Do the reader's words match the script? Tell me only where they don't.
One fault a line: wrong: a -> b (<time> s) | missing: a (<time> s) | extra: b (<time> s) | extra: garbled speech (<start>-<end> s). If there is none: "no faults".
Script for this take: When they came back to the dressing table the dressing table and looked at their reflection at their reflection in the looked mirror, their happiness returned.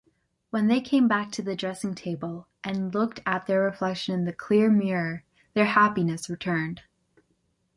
missing: the dressing table (2.5 s)
missing: at their reflection (4.2 s)
wrong: looked -> clear (4.3 s)